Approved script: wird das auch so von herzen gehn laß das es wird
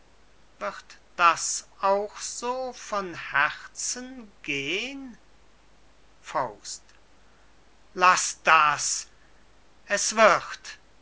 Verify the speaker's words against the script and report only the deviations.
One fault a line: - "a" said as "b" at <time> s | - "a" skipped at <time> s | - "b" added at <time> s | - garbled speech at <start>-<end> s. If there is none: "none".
none